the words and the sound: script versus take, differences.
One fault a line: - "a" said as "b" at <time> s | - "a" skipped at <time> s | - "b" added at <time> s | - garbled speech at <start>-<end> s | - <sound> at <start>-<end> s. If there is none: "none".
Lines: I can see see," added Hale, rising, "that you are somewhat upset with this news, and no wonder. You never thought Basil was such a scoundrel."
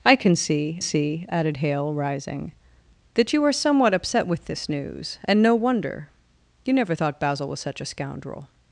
none